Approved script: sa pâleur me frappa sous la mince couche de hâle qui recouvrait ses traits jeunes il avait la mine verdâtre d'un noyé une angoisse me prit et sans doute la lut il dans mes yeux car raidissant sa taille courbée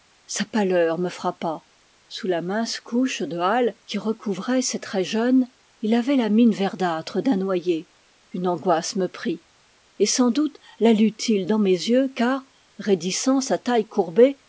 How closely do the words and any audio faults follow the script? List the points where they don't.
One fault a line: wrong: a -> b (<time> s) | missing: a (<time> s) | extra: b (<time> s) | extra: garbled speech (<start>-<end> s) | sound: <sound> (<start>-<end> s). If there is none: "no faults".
no faults